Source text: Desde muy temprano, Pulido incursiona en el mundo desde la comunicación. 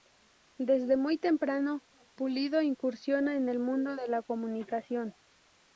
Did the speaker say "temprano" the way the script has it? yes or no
yes